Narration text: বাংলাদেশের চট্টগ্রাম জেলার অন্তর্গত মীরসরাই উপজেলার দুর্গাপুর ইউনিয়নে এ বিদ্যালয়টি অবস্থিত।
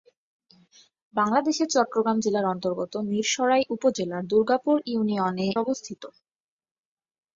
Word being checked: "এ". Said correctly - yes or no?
no